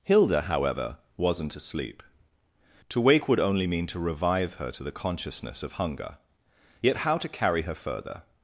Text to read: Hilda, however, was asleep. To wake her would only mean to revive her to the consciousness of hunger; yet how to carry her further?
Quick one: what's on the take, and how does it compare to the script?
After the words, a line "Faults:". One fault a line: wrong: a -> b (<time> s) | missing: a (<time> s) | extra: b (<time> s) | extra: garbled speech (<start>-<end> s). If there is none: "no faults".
Hilda, however, wasn't asleep. To wake would only mean to revive her to the consciousness of hunger; yet how to carry her further?
Faults:
wrong: was -> wasn't (1.2 s)
missing: her (3.3 s)